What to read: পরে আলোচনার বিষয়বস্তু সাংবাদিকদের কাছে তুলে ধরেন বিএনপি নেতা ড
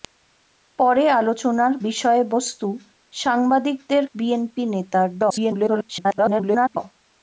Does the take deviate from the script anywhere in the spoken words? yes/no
yes